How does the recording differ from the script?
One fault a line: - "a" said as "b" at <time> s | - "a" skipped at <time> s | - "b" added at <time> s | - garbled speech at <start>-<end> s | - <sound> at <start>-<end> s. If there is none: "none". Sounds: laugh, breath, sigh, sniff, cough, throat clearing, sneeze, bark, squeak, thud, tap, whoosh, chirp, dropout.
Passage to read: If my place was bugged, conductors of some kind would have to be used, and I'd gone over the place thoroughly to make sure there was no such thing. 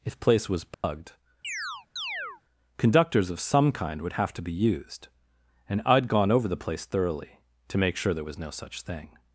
- "my" skipped at 0.2 s
- dropout at 0.7-0.8 s
- chirp at 1.4-2.4 s